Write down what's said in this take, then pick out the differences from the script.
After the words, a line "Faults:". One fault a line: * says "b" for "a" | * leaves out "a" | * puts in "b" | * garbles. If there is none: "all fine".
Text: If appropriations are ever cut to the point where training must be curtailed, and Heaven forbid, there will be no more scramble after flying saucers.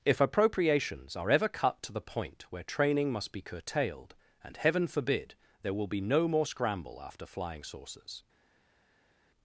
If appropriations are ever cut to the point where training must be curtailed, and Heaven forbid, there will be no more scramble after flying saucers.
Faults:
all fine